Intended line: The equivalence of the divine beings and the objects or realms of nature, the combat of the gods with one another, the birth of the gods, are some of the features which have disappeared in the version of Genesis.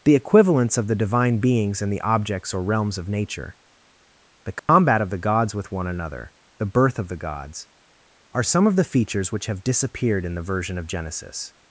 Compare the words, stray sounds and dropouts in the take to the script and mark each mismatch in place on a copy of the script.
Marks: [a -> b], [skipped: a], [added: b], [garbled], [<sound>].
The equivalence of the divine beings and the objects or realms of nature, the combat [dropout] of the gods with one another, the birth of the gods, are some of the features which have disappeared in the version of Genesis.